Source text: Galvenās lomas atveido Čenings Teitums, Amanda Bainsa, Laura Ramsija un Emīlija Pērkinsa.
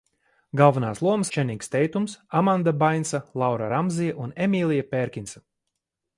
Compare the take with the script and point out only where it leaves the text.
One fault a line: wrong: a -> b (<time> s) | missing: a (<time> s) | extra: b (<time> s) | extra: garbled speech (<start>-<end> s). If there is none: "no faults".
missing: atveido (1.3 s)